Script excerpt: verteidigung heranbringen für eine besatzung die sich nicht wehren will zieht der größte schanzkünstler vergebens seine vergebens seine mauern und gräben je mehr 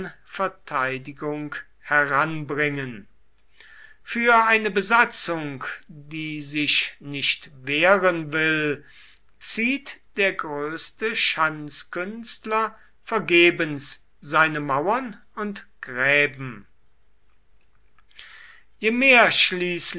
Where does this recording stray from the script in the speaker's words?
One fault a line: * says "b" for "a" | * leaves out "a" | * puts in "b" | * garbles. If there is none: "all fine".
* leaves out "vergebens seine"